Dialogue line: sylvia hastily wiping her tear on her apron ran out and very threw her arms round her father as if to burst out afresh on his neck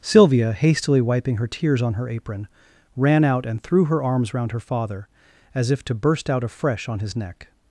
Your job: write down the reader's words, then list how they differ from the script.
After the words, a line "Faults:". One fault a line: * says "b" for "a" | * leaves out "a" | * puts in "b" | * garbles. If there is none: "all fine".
sylvia hastily wiping her tears on her apron ran out and threw her arms round her father as if to burst out afresh on his neck
Faults:
* says "tears" for "tear"
* leaves out "very"